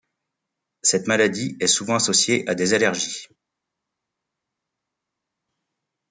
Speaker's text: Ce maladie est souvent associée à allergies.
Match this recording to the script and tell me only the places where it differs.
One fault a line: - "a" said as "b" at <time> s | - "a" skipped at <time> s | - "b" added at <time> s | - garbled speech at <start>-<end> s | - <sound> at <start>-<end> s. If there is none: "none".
- "Ce" said as "Cette" at 0.8 s
- "des" added at 2.5 s